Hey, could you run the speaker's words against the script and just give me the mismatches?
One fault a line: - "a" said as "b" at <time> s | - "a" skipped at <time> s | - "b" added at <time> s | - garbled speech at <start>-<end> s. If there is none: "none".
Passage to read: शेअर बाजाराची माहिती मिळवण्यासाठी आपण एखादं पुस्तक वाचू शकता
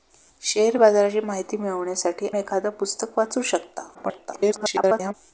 - "आपण" skipped at 2.3 s
- garbled speech at 3.9-5.1 s